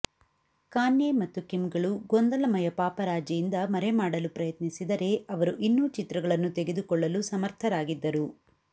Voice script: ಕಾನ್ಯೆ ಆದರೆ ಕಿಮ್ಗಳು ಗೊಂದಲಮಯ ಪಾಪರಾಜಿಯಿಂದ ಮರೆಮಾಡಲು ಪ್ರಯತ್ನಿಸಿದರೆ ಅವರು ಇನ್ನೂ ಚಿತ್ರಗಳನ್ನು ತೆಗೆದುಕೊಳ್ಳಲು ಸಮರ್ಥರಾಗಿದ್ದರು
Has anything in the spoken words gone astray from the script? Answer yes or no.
yes